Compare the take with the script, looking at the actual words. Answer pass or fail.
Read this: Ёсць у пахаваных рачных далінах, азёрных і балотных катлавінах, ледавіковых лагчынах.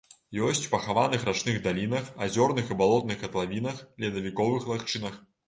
pass